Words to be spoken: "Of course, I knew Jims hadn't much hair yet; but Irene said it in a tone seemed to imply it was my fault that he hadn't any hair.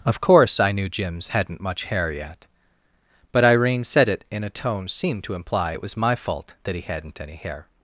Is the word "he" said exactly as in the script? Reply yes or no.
yes